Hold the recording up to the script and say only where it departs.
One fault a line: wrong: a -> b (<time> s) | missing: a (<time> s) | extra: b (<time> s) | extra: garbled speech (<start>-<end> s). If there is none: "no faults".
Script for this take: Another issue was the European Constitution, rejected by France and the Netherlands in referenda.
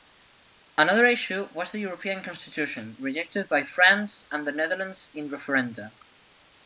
no faults